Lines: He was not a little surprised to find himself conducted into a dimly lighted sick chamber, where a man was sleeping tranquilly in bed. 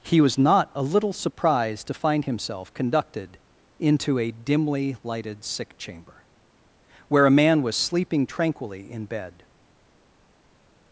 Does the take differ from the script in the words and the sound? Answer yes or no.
no